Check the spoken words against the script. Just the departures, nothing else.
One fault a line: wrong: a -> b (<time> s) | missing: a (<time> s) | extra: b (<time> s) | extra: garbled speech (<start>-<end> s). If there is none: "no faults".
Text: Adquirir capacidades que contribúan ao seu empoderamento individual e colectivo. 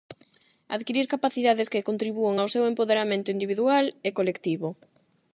no faults